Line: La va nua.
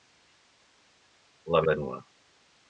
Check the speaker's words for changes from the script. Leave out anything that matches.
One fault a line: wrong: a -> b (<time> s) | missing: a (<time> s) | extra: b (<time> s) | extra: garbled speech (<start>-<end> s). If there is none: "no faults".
no faults